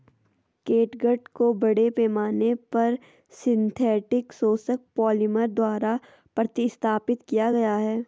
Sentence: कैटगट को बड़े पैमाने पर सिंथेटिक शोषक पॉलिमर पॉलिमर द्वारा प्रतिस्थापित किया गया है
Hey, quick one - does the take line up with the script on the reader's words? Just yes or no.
no